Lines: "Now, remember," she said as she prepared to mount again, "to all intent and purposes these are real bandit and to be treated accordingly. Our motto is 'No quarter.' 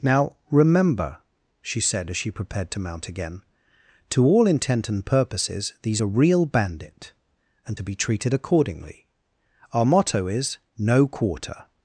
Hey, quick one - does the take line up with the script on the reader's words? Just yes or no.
yes